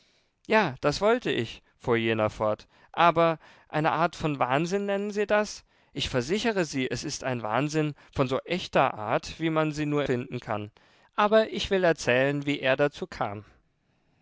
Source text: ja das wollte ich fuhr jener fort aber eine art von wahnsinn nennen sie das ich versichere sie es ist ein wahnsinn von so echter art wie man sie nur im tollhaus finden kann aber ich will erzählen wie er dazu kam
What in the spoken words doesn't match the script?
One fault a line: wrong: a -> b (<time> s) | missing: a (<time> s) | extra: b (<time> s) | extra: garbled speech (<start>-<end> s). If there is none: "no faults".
missing: im tollhaus (10.0 s)